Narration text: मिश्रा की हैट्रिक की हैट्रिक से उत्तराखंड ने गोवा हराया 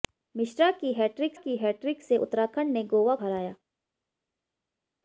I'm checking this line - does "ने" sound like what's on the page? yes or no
yes